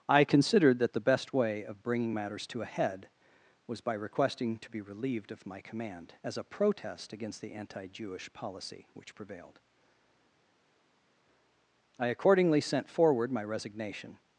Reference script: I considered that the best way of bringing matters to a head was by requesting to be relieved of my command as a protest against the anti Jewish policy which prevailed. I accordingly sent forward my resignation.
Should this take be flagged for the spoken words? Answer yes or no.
no